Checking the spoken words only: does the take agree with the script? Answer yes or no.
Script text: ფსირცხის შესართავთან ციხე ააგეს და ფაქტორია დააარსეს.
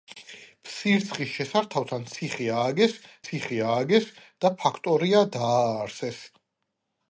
no